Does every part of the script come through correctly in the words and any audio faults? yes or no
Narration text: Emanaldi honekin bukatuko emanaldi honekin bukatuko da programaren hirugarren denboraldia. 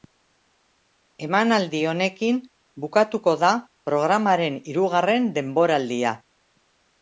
no